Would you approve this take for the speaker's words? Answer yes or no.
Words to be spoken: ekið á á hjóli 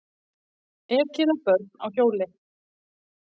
no